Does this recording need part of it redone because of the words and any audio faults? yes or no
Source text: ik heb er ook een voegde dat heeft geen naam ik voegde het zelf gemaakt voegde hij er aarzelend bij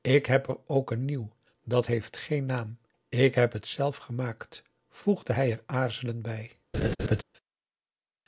yes